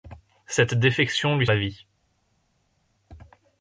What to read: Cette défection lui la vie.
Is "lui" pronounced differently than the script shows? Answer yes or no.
no